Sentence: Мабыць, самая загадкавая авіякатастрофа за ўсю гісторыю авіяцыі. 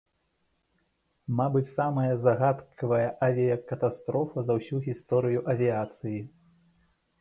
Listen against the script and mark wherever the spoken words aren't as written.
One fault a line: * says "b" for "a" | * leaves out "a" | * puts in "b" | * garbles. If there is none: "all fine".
all fine